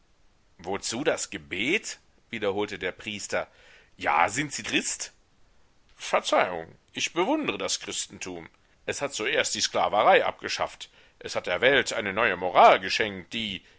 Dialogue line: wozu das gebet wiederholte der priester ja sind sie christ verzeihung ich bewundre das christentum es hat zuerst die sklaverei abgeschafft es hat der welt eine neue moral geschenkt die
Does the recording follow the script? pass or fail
pass